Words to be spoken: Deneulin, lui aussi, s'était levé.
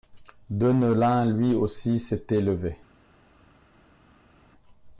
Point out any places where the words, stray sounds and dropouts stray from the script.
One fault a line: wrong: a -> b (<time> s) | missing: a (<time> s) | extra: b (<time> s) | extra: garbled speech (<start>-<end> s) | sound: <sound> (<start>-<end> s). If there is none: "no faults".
no faults